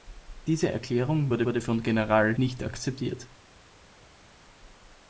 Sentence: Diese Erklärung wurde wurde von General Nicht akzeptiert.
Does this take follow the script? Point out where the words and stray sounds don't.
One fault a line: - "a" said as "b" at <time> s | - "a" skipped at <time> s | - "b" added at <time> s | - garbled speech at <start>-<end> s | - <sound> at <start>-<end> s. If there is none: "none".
none